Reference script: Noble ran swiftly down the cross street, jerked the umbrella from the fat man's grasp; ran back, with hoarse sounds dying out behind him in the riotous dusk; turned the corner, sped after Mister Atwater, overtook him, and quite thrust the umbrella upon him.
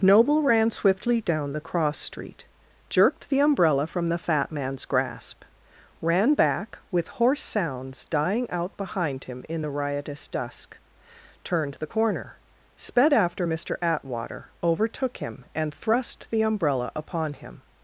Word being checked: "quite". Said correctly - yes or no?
no